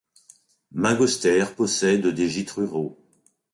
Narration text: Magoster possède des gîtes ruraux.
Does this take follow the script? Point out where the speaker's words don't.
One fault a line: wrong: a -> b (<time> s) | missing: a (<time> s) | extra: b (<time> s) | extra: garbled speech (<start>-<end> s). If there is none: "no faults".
no faults